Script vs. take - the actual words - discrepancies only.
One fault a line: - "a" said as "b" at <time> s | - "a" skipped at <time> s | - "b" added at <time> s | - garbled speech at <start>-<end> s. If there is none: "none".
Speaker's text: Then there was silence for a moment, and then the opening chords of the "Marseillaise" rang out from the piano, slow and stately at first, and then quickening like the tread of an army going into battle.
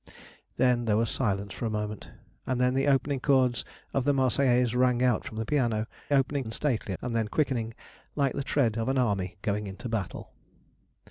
- "slow" said as "opening" at 6.1 s
- "at first" skipped at 6.9 s